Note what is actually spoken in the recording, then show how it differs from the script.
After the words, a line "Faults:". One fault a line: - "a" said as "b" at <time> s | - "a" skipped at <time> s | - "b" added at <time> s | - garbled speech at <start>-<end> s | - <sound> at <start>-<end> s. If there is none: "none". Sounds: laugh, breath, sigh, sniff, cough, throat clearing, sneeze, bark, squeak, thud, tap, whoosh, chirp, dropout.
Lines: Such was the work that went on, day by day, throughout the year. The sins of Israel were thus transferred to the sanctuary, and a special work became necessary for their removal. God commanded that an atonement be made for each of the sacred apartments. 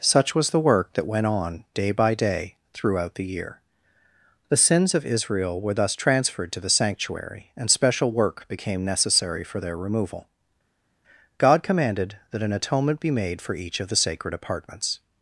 Such was the work that went on, day by day, throughout the year. The sins of Israel were thus transferred to the sanctuary, and special work became necessary for their removal. God commanded that an atonement be made for each of the sacred apartments.
Faults:
- "a" skipped at 7.7 s